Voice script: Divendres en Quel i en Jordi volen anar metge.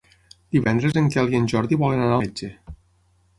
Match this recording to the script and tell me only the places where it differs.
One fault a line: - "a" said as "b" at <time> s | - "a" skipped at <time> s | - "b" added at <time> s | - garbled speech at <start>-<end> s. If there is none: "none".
none